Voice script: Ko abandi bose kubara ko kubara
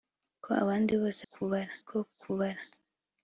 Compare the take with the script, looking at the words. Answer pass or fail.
pass